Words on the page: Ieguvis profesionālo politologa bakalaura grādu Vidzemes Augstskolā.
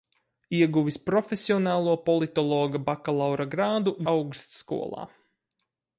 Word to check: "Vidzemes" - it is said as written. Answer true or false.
false